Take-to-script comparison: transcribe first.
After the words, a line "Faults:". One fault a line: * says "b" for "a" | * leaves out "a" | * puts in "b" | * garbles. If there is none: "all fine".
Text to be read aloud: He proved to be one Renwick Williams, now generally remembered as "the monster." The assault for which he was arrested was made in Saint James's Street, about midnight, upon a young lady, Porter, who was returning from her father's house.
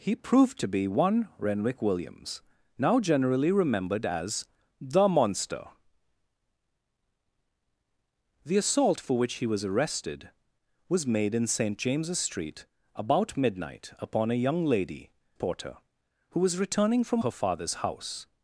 He proved to be one Renwick Williams, now generally remembered as "the monster." The assault for which he was arrested was made in Saint James's Street, about midnight, upon a young lady, Porter, who was returning from her father's house.
Faults:
all fine